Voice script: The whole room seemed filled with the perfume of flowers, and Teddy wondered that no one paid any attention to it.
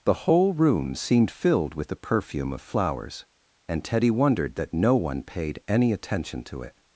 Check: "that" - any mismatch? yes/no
no